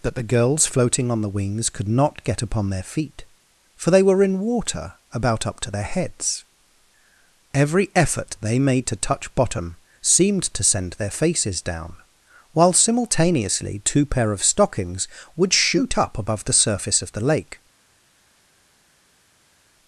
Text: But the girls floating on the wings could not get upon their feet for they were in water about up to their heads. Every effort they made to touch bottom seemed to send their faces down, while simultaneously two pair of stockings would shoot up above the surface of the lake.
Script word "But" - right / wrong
wrong